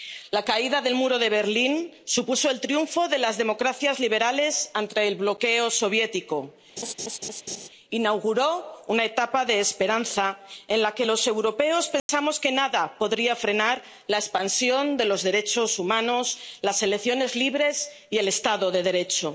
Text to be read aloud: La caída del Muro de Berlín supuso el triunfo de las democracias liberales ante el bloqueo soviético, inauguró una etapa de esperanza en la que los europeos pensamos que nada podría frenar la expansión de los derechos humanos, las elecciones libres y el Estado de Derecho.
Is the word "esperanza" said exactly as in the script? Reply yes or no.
yes